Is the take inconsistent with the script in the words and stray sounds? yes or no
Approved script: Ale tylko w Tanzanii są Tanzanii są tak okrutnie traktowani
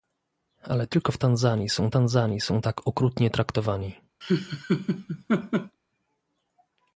yes